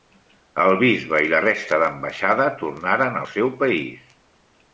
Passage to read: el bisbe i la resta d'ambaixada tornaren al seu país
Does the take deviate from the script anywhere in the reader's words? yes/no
no